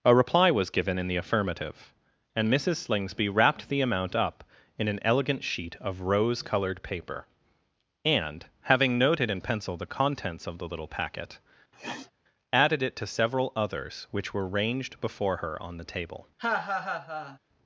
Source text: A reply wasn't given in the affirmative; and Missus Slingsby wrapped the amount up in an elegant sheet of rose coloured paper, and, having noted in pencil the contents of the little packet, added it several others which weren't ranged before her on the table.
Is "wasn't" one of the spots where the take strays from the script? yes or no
yes